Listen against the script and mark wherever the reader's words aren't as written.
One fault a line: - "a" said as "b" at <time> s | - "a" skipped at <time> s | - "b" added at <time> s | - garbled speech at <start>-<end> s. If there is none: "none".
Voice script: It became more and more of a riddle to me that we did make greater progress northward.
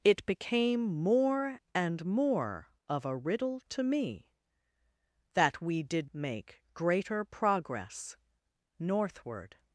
none